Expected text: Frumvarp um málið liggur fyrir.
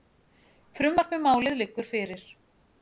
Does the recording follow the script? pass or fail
pass